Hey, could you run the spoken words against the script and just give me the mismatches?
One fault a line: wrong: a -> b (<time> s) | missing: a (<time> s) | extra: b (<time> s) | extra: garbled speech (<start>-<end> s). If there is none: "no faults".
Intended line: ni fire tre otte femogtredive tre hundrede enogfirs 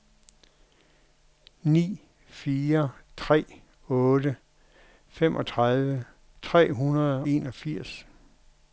no faults